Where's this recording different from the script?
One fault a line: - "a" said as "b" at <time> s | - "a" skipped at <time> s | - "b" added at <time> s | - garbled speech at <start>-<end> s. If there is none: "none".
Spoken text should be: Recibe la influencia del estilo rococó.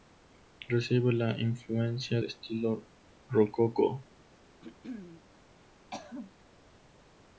- "del" skipped at 2.2 s